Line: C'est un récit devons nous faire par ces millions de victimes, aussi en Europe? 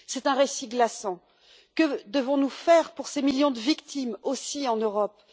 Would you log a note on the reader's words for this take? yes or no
yes